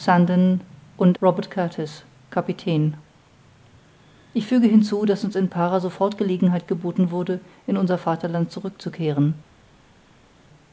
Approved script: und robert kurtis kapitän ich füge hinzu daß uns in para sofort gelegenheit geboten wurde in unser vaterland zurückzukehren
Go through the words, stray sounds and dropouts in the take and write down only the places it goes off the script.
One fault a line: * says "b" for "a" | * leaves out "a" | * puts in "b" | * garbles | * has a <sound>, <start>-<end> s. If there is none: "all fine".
all fine